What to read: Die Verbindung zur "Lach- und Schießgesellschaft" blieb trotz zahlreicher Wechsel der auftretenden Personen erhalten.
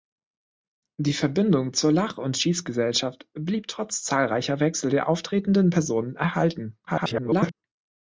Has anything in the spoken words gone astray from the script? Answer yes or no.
yes